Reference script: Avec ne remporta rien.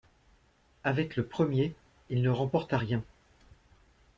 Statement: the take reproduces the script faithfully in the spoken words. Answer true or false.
false